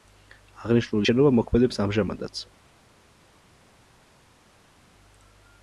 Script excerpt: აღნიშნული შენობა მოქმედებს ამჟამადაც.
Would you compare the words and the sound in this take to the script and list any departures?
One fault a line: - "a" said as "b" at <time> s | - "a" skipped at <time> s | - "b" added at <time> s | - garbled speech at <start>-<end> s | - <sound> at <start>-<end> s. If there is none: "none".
none